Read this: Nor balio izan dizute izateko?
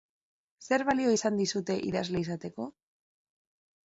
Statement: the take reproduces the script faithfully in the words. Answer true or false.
false